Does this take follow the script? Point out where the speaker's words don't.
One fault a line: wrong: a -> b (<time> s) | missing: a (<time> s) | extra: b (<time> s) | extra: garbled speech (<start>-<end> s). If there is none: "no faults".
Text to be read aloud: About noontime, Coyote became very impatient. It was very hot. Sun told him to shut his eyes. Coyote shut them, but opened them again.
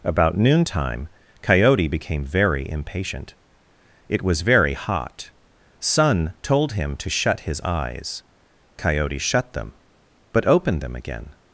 no faults